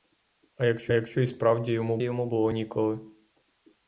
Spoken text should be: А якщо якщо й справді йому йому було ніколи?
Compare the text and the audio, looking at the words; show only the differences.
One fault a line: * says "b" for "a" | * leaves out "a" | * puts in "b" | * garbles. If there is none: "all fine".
all fine